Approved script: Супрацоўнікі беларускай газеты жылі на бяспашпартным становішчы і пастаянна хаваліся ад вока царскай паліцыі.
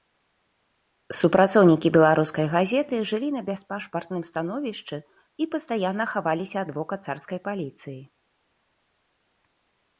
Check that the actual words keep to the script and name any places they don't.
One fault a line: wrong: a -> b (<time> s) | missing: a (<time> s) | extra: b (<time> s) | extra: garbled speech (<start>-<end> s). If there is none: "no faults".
no faults